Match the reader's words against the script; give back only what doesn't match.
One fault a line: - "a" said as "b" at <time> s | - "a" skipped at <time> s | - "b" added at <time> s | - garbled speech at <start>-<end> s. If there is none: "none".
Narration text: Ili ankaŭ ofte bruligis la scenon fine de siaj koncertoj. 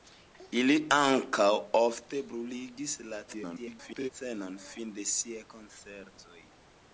- garbled speech at 3.3-4.1 s